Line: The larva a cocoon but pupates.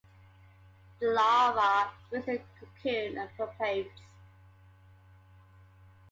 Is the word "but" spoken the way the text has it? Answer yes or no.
no